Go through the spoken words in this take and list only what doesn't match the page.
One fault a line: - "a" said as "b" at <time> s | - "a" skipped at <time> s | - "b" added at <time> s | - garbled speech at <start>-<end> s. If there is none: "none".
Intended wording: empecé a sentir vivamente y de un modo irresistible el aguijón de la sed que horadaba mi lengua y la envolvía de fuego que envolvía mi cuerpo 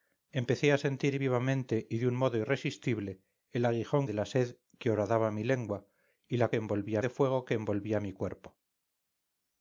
none